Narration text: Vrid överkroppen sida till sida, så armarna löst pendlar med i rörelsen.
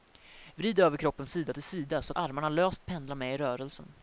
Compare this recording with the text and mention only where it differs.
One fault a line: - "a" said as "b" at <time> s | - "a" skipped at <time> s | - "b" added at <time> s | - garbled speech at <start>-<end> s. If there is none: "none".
none